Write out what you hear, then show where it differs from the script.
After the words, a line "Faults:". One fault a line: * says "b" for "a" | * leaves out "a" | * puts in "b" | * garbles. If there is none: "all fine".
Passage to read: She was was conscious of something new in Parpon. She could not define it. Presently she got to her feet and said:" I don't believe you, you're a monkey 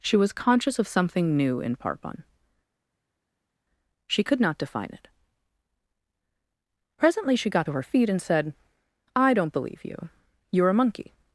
She was conscious of something new in Parpon. She could not define it. Presently she got to her feet and said:" I don't believe you, you're a monkey
Faults:
* leaves out "was"